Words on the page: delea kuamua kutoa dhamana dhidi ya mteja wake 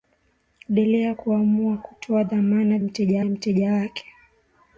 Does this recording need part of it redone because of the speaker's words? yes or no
yes